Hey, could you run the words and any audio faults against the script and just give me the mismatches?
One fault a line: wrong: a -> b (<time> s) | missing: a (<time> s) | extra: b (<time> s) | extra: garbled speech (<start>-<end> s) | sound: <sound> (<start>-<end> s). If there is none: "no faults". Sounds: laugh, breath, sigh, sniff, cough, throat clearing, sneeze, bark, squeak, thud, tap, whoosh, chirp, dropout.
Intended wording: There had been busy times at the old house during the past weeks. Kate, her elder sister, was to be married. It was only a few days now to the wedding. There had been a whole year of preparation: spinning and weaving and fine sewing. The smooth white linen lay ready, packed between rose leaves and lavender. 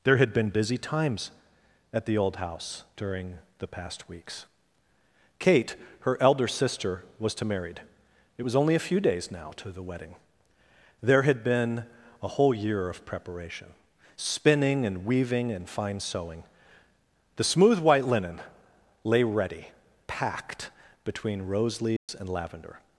missing: be (7.4 s)
sound: dropout (22.0-22.1 s)